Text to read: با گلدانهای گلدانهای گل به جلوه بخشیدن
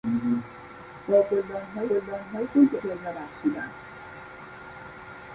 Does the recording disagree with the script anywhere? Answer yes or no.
no